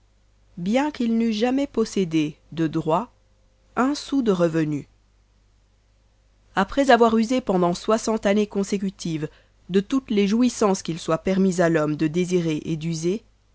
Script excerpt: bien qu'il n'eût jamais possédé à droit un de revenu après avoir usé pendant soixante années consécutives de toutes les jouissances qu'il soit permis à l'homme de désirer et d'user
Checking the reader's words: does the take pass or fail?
fail